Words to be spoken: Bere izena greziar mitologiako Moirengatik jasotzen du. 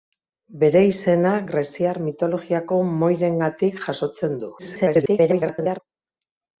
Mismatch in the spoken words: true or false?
true